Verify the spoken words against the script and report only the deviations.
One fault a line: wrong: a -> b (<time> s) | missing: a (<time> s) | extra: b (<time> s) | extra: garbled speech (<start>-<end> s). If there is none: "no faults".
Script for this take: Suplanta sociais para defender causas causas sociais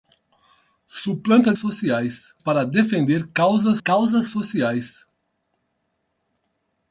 no faults